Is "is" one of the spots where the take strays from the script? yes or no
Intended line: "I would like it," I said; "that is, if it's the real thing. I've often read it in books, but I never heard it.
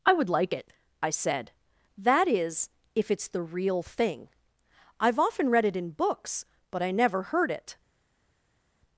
no